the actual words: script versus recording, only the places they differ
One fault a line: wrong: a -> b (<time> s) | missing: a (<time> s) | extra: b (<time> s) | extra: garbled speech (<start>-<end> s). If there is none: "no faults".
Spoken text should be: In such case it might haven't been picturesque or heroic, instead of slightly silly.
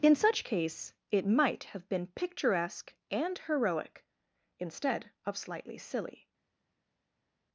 wrong: haven't -> have (1.8 s)
wrong: or -> and (3.1 s)